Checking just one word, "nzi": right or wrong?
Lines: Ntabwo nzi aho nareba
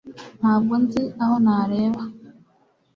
right